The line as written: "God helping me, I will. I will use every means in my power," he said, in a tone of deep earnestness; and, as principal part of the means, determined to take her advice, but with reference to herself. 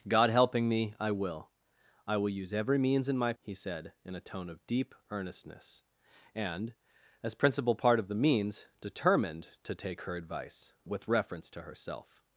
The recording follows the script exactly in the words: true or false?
false